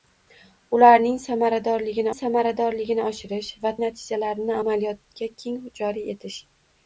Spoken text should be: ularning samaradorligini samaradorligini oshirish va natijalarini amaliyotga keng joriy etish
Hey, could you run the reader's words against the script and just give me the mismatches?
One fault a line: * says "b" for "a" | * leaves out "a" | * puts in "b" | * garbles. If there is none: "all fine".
all fine